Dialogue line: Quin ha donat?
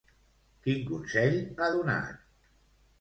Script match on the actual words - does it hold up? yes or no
no